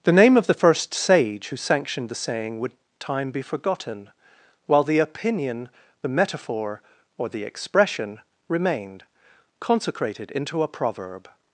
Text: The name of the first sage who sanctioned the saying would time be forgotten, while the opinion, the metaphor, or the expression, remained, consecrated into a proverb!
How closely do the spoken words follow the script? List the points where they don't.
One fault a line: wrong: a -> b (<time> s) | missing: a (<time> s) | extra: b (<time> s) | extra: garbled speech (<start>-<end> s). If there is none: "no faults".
no faults